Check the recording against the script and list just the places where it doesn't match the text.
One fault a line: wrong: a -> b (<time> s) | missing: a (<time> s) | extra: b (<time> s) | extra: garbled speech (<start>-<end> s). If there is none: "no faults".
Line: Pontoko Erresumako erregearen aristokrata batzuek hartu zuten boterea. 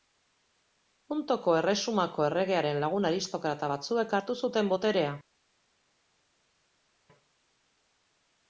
extra: lagun (2.9 s)